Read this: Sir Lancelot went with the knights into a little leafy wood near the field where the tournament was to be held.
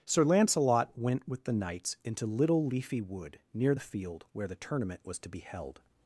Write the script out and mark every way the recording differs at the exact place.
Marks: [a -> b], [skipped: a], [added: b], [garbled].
Sir Lancelot went with the knights into [skipped: a] little leafy wood near the field where the tournament was to be held.